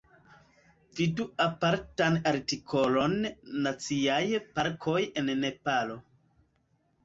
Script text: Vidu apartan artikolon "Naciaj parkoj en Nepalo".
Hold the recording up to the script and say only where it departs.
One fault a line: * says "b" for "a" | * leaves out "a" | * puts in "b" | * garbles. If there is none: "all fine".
all fine